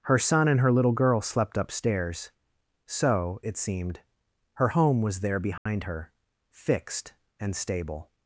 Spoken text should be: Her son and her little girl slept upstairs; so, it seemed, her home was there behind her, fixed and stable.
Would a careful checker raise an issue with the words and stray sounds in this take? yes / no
yes